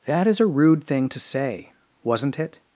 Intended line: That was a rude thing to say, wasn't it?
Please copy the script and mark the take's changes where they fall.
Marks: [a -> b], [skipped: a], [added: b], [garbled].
That [was -> is] a rude thing to say, wasn't it?